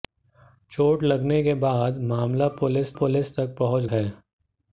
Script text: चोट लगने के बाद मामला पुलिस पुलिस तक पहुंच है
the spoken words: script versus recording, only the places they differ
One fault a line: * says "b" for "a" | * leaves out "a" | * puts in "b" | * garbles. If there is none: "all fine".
all fine